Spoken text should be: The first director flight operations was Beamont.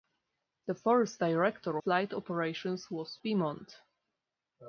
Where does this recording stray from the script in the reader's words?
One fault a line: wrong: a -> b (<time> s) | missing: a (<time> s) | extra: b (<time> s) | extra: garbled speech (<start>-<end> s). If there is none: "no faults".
no faults